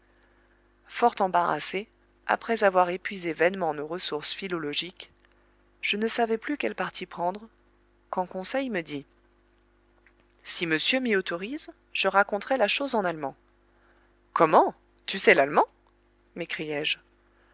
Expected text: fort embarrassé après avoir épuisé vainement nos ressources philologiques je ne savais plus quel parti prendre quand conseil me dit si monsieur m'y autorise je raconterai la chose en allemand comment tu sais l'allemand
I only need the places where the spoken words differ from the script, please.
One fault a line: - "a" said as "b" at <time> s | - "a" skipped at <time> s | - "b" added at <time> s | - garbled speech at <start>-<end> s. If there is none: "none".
none